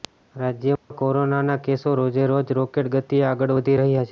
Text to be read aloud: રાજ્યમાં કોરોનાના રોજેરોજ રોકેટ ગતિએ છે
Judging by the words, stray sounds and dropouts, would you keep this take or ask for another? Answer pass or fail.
fail